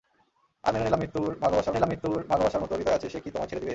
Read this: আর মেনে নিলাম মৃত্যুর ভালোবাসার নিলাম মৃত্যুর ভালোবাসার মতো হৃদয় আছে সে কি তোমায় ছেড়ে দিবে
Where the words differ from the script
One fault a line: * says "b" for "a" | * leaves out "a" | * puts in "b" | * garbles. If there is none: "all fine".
all fine